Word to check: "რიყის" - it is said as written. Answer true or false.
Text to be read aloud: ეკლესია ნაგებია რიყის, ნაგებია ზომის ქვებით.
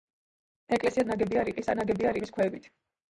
true